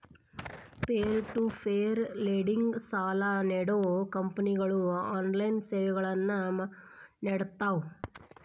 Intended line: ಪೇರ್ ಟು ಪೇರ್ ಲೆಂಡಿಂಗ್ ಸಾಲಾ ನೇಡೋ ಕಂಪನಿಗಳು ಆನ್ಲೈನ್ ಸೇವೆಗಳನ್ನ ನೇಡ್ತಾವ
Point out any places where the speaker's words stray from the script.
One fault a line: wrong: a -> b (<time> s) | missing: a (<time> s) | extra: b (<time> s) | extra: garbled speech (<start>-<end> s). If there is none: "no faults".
no faults